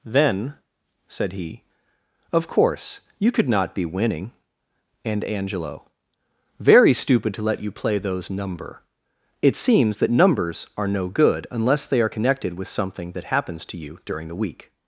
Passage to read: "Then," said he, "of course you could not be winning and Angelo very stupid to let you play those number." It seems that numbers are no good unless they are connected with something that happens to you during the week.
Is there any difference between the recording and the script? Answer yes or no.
no